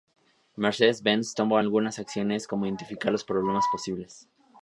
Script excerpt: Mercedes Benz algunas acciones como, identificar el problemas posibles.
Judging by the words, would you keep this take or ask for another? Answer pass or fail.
fail